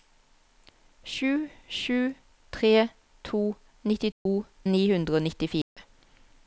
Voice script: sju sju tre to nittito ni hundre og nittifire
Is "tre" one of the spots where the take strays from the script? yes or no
no